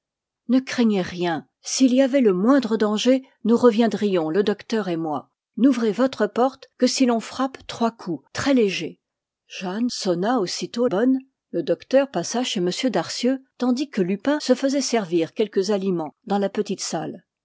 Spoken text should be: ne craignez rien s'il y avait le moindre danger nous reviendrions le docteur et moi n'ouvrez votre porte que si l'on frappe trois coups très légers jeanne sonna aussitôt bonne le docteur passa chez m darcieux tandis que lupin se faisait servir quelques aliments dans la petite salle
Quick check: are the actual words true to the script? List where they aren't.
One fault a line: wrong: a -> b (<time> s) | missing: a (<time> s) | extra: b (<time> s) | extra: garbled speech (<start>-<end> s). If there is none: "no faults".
no faults